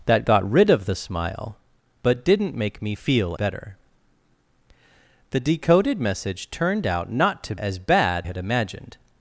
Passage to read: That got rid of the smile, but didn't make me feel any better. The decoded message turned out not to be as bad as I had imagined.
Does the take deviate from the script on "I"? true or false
true